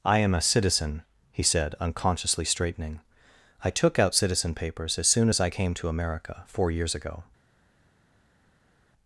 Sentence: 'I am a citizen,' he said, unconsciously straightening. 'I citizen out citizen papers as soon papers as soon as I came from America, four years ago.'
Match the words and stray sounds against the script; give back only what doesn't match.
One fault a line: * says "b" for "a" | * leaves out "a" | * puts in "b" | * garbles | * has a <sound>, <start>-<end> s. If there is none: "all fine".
* says "took" for "citizen"
* leaves out "papers"
* leaves out "soon as"
* says "to" for "from"